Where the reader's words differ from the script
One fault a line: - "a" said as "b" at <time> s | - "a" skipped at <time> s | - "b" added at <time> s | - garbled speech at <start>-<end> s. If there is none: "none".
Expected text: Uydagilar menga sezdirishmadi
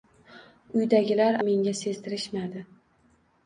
none